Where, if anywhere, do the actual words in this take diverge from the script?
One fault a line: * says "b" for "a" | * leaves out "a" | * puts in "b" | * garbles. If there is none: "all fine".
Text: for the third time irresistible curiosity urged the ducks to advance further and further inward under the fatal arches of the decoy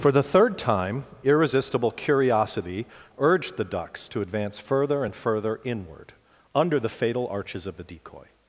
all fine